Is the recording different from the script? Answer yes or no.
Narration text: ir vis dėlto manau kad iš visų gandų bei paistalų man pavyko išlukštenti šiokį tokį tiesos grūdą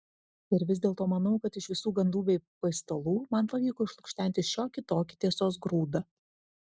no